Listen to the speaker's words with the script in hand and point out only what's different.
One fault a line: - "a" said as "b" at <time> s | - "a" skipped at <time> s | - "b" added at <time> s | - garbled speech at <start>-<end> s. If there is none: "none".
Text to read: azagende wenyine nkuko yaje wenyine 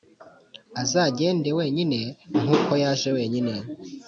none